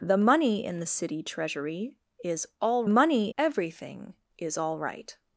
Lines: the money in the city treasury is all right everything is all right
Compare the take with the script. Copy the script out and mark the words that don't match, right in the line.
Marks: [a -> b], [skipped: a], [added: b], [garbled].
the money in the city treasury is all [right -> money] everything is all right